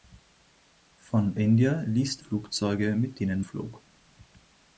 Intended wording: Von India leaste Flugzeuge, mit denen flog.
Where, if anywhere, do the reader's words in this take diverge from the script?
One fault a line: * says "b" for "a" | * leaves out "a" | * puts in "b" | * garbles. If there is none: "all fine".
all fine